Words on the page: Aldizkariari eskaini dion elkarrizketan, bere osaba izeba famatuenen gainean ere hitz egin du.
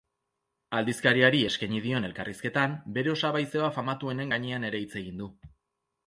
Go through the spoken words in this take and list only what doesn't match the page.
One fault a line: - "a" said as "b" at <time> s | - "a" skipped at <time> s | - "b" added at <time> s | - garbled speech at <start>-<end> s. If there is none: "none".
none